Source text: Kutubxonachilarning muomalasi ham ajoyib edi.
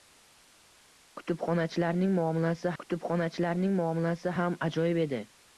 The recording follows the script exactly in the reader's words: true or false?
false